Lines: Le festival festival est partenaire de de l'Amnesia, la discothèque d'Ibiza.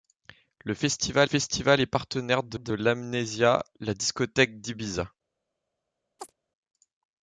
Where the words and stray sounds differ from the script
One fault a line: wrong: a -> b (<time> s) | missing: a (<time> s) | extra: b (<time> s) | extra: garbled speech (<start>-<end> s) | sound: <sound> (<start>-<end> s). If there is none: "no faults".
sound: chirp (6.2-6.3 s)